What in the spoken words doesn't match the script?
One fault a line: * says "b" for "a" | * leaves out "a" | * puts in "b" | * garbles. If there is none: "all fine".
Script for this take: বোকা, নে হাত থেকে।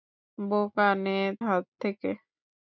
all fine